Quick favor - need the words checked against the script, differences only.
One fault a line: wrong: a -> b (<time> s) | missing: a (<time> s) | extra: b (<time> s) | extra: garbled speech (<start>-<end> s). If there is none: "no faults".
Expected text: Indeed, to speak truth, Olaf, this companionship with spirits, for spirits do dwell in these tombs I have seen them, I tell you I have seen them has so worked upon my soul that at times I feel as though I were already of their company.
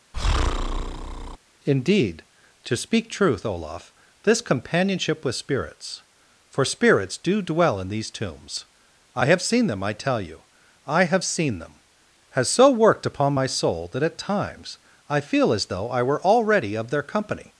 no faults